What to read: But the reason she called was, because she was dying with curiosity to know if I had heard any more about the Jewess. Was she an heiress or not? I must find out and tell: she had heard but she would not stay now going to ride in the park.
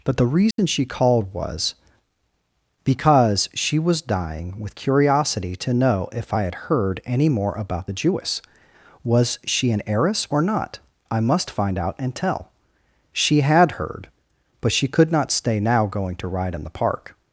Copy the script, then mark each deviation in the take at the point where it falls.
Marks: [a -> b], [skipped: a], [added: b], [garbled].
But the reason she called was, because she was dying with curiosity to know if I had heard any more about the Jewess. Was she an heiress or not? I must find out and tell: she had heard but she [would -> could] not stay now going to ride in the park.